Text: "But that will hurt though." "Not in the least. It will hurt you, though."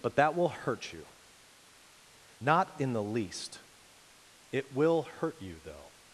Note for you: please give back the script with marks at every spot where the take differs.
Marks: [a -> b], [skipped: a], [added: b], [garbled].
"But that will hurt [though." -> you] "Not in the least. It will hurt you, though."